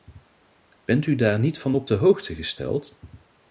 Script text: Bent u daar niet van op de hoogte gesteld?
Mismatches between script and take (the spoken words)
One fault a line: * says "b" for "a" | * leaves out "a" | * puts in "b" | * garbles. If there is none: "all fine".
all fine